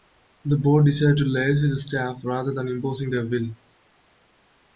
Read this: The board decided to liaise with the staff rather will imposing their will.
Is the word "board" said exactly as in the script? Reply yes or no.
yes